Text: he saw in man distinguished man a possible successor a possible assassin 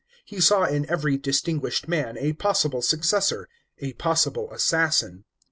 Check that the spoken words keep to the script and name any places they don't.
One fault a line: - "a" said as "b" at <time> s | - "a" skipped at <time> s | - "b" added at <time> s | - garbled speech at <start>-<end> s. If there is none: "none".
- "man" said as "every" at 0.9 s